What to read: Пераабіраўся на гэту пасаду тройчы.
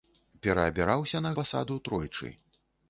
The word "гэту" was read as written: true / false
false